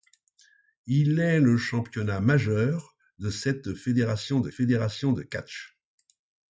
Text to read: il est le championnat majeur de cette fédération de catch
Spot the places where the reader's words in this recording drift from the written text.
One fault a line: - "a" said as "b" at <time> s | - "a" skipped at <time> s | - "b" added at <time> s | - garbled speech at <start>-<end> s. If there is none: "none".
- "fédération de" added at 4.5 s